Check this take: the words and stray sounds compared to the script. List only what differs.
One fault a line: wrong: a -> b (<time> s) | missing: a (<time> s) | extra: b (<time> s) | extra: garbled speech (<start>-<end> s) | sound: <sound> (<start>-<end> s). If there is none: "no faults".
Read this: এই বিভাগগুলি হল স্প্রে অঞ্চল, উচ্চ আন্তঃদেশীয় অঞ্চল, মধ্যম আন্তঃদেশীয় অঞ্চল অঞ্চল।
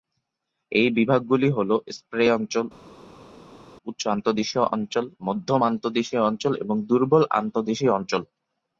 extra: এবং দুর্বল আন্তঃদেশীয় (6.6 s)